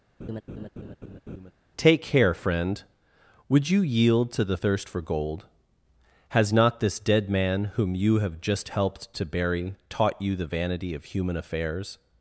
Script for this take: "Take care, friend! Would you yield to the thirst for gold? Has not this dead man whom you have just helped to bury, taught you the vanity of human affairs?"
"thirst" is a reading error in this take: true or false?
false